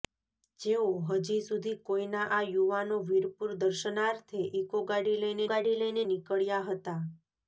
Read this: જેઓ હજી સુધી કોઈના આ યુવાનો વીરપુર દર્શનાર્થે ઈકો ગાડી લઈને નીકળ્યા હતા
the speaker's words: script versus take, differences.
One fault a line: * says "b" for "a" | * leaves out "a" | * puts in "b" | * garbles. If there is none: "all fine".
* puts in "ગાડી લઈને"